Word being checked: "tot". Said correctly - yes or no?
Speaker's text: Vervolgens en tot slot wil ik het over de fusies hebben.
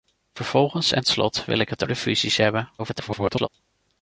no